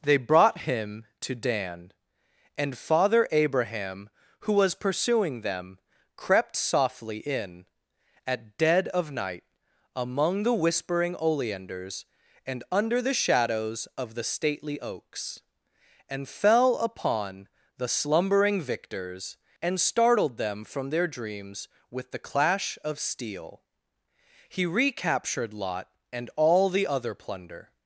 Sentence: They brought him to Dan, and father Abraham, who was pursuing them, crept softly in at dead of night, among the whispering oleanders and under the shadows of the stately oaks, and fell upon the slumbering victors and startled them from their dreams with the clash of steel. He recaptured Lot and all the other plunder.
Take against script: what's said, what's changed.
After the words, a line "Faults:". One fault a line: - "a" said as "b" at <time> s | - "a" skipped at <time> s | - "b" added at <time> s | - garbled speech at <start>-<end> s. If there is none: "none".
They brought him to Dan, and father Abraham, who was pursuing them, crept softly in at dead of night, among the whispering oleanders and under the shadows of the stately oaks, and fell upon the slumbering victors and startled them from their dreams with the clash of steel. He recaptured Lot and all the other plunder.
Faults:
none